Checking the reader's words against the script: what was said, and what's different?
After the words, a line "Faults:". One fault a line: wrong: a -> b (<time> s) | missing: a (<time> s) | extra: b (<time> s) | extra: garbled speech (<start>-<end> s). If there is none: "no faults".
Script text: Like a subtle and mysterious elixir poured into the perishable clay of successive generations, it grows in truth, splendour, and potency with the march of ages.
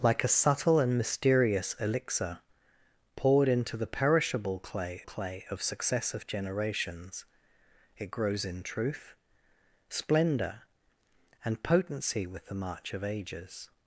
Like a subtle and mysterious elixir poured into the perishable clay clay of successive generations, it grows in truth, splendour, and potency with the march of ages.
Faults:
extra: clay (5.0 s)